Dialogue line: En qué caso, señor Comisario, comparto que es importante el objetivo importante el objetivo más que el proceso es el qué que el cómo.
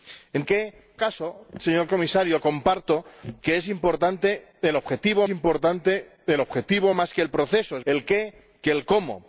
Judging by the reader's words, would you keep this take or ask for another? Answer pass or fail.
pass